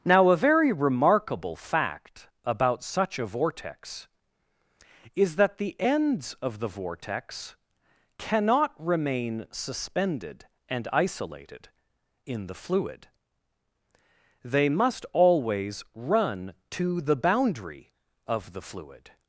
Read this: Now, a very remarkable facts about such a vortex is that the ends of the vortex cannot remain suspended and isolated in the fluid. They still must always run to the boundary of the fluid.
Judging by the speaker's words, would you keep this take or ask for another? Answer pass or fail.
fail